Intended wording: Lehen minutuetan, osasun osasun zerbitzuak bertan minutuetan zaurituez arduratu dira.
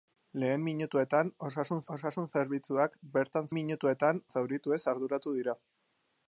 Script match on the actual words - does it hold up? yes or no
yes